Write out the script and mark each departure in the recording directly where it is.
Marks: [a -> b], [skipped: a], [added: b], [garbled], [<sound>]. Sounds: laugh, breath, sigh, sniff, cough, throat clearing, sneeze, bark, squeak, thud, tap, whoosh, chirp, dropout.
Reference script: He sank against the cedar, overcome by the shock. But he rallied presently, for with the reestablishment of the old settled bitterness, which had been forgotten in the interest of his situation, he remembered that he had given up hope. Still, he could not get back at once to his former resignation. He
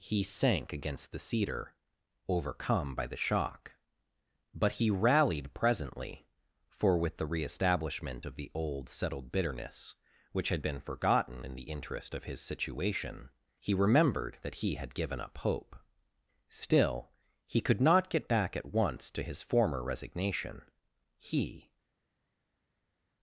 He sank against the cedar, overcome by the shock. But he rallied presently, for with the reestablishment of the old settled bitterness, which had been forgotten in the interest of his situation, he remembered that he had given up hope. Still, he could not get back at once to his former resignation. He